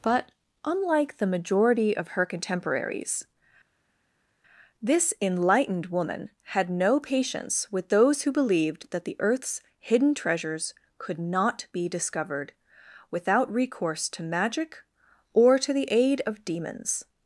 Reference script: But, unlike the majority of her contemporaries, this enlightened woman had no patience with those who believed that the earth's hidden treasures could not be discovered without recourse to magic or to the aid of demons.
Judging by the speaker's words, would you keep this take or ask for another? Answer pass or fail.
pass